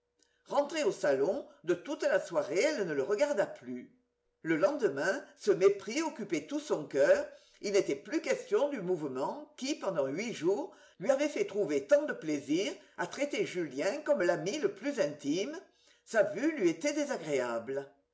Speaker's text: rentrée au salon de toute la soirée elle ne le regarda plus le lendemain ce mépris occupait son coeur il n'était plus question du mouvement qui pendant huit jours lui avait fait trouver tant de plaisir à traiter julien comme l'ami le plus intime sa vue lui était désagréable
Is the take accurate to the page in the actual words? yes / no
no